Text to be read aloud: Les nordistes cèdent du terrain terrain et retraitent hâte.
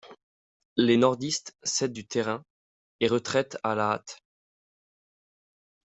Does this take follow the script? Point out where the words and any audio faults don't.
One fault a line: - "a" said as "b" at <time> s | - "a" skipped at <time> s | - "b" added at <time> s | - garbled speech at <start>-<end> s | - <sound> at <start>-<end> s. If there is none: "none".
- "terrain" skipped at 2.4 s
- "à la" added at 3.6 s